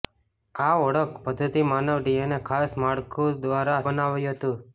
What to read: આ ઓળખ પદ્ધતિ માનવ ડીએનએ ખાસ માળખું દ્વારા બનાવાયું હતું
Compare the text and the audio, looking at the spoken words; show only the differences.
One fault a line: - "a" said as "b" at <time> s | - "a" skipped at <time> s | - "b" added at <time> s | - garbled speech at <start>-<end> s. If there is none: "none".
none